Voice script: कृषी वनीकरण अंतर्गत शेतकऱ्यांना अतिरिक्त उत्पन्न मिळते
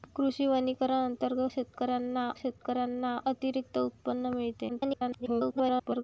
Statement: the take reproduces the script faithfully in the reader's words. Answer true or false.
false